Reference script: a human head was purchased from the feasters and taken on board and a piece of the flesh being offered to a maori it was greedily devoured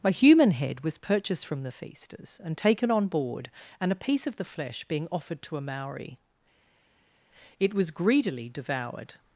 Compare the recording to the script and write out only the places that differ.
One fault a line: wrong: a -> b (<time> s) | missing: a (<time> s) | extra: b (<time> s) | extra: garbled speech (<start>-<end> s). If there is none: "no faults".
no faults